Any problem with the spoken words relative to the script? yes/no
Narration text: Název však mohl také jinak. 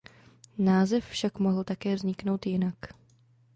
yes